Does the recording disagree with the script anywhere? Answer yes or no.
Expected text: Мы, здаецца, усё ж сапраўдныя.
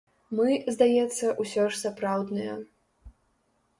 no